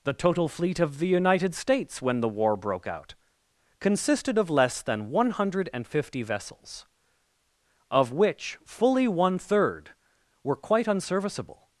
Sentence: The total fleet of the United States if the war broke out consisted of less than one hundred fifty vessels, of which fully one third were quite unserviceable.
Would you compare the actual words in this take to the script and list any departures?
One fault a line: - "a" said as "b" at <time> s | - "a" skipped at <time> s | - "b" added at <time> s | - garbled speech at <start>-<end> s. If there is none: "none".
- "if" said as "when" at 2.0 s